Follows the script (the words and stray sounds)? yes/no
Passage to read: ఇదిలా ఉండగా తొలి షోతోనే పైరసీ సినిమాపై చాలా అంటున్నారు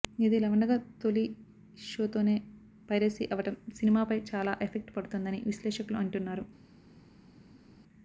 no